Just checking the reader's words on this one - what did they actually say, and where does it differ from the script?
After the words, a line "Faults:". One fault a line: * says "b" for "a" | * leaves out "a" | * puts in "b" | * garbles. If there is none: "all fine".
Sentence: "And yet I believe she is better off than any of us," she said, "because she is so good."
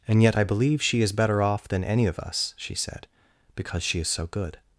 "And yet I believe she is better off than any of us," she said, "because she is so good."
Faults:
all fine